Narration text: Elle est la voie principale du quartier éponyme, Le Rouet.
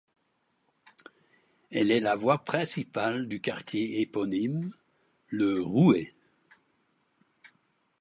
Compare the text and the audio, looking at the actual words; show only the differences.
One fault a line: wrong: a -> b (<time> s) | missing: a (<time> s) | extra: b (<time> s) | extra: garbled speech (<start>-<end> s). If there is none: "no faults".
no faults